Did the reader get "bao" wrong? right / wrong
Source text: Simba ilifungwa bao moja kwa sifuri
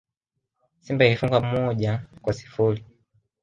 wrong